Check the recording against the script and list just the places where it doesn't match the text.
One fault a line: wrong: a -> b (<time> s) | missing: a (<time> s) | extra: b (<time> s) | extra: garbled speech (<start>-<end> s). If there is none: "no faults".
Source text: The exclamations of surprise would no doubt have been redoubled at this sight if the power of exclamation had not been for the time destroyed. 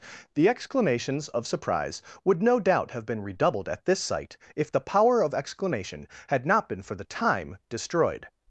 no faults